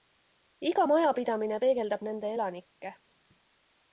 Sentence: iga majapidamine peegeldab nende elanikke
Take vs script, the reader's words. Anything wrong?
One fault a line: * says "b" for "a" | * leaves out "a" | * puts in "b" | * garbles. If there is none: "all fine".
all fine